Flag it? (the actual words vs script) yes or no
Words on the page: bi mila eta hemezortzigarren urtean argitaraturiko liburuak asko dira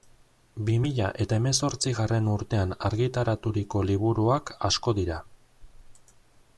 no